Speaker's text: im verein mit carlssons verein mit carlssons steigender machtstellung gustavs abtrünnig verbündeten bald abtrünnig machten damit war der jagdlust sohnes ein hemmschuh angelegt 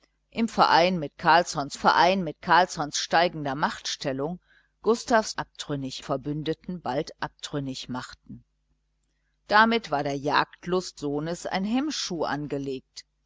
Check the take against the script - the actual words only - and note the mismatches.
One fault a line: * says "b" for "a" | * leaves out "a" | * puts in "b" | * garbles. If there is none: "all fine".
all fine